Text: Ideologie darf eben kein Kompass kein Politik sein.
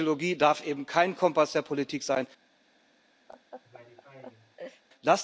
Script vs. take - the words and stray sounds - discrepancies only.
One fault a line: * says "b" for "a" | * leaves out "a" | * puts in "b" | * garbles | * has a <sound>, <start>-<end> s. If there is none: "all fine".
* says "der" for "kein"
* has a laugh, 3.3-4.8 s